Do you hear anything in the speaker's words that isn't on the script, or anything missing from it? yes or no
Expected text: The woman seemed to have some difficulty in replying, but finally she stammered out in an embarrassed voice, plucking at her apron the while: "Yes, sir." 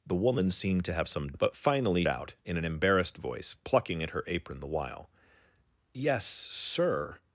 yes